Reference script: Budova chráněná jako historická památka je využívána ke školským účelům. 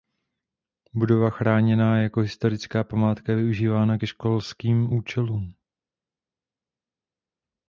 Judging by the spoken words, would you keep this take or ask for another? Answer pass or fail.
pass